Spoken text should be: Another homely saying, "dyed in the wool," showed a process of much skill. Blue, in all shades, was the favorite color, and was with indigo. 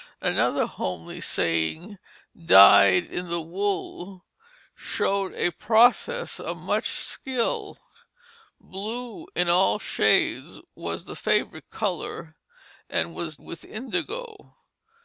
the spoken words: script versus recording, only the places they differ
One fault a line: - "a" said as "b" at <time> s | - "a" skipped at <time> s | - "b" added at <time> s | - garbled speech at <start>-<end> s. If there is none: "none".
none